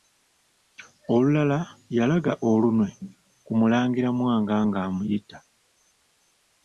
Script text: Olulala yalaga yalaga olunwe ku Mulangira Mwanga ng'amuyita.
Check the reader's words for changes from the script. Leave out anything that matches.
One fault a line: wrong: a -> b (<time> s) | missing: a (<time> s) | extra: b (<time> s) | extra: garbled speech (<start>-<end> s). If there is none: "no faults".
missing: yalaga (2.3 s)